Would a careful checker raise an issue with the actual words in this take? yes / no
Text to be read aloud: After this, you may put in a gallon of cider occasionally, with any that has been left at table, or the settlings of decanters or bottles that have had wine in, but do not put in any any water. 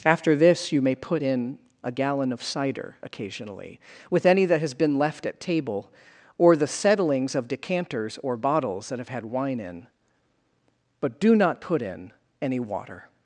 yes